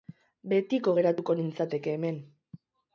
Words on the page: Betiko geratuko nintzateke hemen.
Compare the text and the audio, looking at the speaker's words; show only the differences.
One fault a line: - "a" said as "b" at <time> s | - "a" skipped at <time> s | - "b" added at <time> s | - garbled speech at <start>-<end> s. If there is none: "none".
none